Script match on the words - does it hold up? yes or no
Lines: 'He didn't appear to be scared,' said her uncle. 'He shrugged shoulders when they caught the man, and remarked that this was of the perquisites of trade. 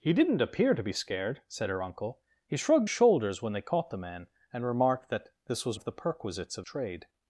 yes